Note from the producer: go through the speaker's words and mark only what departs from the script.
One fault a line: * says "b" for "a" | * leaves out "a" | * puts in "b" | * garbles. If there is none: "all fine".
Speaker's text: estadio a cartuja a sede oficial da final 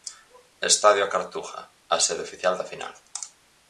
all fine